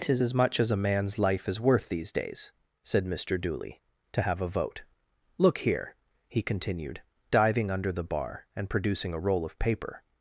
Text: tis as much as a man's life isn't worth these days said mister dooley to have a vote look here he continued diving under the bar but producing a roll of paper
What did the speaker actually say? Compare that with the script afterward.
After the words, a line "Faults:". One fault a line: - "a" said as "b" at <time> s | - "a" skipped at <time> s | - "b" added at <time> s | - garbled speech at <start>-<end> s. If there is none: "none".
tis as much as a man's life is worth these days said mister dooley to have a vote look here he continued diving under the bar and producing a roll of paper
Faults:
- "isn't" said as "is" at 1.5 s
- "but" said as "and" at 8.5 s